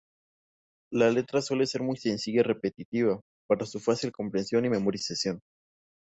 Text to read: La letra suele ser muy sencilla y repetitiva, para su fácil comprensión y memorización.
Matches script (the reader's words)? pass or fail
pass